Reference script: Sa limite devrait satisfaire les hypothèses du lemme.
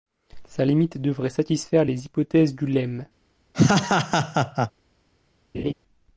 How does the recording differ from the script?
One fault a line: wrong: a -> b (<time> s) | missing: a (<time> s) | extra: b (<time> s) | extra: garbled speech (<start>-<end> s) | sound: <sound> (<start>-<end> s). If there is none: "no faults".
sound: laugh (3.5-4.7 s)
sound: laugh (5.5-5.7 s)